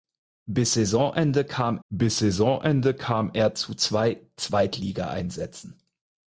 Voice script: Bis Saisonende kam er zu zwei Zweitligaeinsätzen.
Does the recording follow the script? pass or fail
fail